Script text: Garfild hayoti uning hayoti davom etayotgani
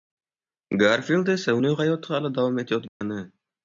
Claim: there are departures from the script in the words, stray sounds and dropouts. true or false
true